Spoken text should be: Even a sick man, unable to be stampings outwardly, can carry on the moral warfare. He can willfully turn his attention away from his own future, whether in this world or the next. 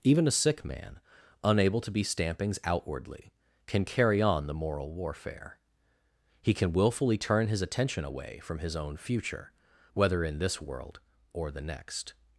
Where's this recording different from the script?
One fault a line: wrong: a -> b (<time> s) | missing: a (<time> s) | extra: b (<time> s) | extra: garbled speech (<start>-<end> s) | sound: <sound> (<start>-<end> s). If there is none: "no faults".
no faults